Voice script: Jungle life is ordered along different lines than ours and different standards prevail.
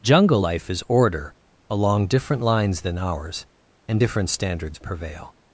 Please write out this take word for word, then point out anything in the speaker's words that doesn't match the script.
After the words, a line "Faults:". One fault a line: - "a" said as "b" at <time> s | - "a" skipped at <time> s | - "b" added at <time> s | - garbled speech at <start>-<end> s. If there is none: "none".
Jungle life is order along different lines than ours and different standards prevail.
Faults:
- "ordered" said as "order" at 0.9 s